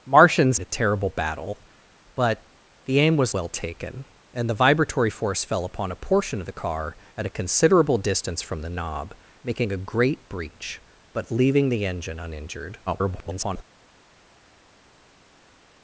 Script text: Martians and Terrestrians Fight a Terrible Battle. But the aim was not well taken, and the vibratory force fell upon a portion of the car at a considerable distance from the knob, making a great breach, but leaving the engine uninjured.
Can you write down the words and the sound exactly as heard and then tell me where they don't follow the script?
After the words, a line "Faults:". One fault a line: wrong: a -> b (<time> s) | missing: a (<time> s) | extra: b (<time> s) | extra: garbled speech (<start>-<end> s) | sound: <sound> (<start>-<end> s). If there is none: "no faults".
Martians a Terrible Battle. But the aim was well taken, and the vibratory force fell upon a portion of the car at a considerable distance from the knob, making a great breach, but leaving the engine uninjured. [garbled]
Faults:
missing: and Terrestrians Fight (0.6 s)
missing: not (3.4 s)
extra: garbled speech (12.9-13.6 s)